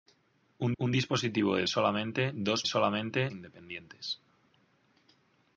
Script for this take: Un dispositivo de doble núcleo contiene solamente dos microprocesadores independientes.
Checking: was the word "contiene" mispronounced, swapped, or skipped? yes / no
yes